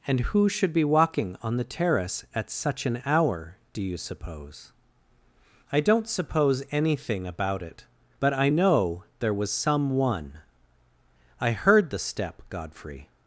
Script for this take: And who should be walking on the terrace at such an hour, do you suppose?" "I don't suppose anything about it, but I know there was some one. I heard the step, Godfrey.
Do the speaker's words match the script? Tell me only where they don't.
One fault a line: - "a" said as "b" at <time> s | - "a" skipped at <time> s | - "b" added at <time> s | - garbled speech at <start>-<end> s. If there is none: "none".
none